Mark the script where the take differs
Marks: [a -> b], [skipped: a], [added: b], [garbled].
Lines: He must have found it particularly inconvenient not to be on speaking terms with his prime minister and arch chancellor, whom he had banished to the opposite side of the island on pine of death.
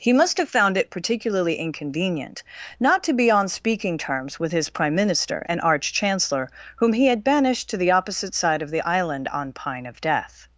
He must have found it particularly inconvenient not to be on speaking terms with his prime minister and arch chancellor, whom he had banished to the opposite side of the island on pine of death.